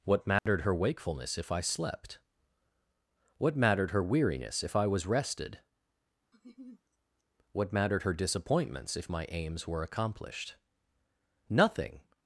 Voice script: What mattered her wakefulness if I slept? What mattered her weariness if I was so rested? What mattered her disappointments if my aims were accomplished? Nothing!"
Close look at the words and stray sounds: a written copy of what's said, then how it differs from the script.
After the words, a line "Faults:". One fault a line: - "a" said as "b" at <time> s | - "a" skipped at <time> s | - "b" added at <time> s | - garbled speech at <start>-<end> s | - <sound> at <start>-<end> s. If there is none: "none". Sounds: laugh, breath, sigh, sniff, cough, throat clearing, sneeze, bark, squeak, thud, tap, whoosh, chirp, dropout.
What mattered her wakefulness if I slept? What mattered her weariness if I was rested? What mattered her disappointments if my aims were accomplished? Nothing!"
Faults:
- dropout at 0.4-0.5 s
- "so" skipped at 5.0 s
- laugh at 6.3-6.8 s